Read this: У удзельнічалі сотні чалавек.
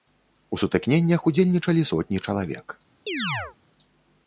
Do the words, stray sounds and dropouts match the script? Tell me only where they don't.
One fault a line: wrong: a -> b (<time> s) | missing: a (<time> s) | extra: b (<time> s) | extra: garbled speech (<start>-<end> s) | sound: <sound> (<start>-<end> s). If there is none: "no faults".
extra: сутыкненнях (0.6 s)
sound: chirp (3.1-3.6 s)